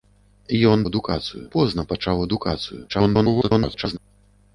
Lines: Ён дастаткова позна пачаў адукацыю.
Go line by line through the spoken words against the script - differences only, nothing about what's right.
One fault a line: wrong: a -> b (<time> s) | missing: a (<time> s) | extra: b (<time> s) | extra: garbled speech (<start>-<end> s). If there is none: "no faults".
wrong: дастаткова -> адукацыю (0.9 s)
extra: garbled speech (2.9-4.0 s)